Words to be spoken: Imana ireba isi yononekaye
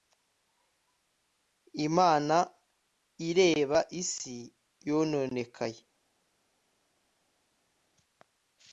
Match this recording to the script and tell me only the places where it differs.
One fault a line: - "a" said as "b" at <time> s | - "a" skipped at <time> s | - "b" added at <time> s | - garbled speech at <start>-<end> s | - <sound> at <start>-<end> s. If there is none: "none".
none